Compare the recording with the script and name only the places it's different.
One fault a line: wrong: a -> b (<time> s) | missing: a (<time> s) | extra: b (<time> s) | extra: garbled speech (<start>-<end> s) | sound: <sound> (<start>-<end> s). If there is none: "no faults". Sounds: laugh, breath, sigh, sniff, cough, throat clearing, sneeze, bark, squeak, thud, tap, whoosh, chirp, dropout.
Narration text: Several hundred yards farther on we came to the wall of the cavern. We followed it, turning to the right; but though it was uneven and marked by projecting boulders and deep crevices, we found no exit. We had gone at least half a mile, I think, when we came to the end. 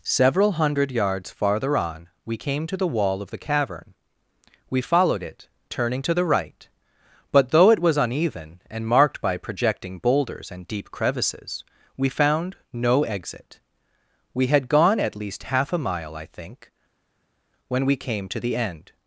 no faults